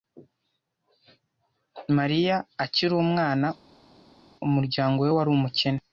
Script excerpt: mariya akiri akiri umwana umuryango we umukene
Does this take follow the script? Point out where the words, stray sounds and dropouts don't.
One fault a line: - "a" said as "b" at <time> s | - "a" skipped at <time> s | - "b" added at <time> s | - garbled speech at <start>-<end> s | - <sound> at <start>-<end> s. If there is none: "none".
- "akiri" skipped at 2.9 s
- "wari" added at 5.2 s